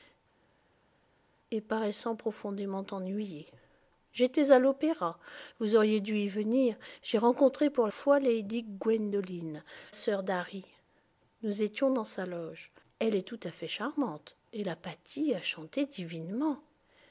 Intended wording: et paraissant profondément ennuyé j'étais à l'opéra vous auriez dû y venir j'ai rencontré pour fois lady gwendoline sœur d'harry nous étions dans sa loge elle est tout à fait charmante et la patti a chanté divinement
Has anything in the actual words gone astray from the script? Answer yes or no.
no